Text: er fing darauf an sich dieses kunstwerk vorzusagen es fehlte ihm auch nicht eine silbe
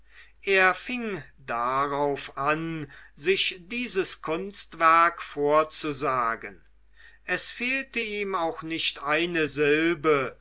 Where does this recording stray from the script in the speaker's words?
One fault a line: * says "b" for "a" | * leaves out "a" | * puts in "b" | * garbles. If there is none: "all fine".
all fine